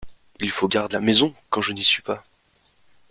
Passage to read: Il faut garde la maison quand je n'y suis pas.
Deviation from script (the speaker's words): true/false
false